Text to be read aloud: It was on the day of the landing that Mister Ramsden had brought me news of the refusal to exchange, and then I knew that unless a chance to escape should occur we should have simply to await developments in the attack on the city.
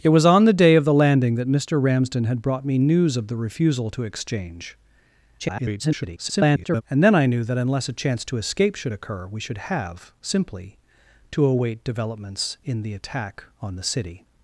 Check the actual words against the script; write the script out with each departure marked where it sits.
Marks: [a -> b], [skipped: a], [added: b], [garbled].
It was on the day of the landing that Mister Ramsden had brought me news of the refusal to exchange, [garbled] and then I knew that unless a chance to escape should occur we should have simply to await developments in the attack on the city.